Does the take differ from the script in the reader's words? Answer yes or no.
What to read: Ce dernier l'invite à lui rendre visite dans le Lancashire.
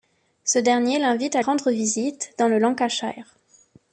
yes